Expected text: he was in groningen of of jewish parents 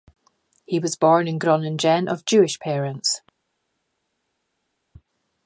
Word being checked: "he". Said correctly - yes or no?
yes